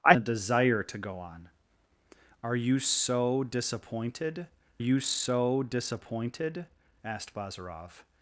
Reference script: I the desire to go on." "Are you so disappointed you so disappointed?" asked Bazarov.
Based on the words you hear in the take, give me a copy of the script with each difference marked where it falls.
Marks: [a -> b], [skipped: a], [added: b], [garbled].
I the desire to go on." "Are you so disappointed you so disappointed?" asked Bazarov.